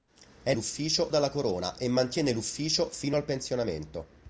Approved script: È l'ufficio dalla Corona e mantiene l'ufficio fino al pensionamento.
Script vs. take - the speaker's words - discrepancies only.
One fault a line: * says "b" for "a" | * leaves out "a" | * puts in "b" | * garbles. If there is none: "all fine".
all fine